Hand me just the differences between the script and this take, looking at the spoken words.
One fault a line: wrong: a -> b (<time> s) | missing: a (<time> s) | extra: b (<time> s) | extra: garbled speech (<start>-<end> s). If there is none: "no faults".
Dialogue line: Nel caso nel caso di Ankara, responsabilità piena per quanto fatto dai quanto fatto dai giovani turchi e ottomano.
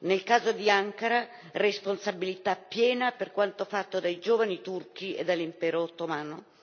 missing: nel caso (0.5 s)
missing: quanto fatto dai (4.2 s)
extra: dall'impero (5.3 s)